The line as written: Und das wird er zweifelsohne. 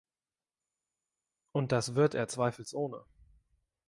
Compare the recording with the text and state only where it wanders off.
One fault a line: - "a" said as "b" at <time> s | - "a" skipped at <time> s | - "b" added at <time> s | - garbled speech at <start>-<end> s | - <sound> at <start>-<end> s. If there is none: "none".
none